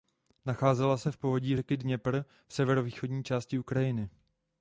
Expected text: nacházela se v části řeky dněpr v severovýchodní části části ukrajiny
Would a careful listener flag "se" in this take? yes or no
no